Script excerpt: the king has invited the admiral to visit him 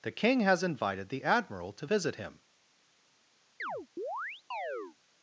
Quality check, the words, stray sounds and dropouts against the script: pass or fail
fail